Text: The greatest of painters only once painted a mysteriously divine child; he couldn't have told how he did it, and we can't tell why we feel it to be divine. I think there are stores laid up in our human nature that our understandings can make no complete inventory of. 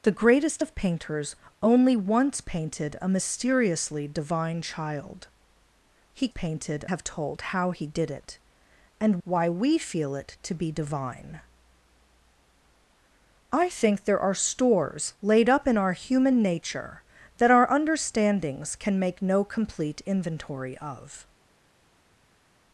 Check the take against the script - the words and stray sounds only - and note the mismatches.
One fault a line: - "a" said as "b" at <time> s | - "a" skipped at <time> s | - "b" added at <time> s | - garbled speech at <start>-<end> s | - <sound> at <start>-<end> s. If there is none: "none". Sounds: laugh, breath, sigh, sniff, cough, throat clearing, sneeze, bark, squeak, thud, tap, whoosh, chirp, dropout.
- "couldn't" said as "painted" at 6.3 s
- "we can't tell" skipped at 9.2 s